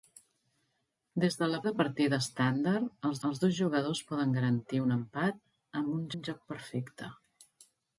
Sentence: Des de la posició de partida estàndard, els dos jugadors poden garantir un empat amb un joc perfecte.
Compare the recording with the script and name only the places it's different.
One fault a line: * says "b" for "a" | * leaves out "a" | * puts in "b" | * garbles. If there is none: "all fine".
* leaves out "posició"
* puts in "els"
* puts in "un"